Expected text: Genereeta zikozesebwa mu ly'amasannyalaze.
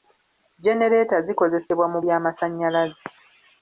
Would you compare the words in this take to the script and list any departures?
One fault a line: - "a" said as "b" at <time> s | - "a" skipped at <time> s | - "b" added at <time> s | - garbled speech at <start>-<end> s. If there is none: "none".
none